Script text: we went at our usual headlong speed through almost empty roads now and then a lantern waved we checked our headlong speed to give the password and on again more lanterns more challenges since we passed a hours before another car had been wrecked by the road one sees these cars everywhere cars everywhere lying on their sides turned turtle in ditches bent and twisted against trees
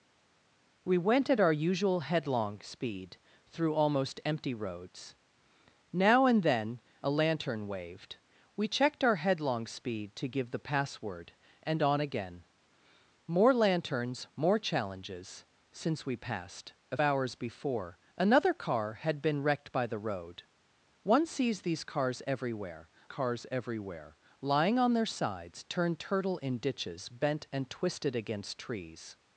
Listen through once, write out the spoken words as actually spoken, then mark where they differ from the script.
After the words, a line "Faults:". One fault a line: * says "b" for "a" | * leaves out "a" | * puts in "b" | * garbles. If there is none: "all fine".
we went at our usual headlong speed through almost empty roads now and then a lantern waved we checked our headlong speed to give the password and on again more lanterns more challenges since we passed a hours before another car had been wrecked by the road one sees these cars everywhere cars everywhere lying on their sides turned turtle in ditches bent and twisted against trees
Faults:
all fine